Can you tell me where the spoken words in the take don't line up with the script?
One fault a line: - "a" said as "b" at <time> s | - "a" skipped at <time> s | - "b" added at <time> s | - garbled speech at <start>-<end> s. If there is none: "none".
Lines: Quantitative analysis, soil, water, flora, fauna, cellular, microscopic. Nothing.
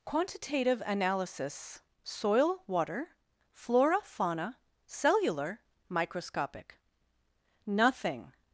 none